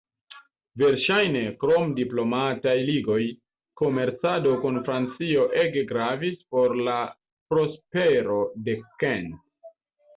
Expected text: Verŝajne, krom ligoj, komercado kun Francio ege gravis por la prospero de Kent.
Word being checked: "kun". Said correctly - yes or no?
yes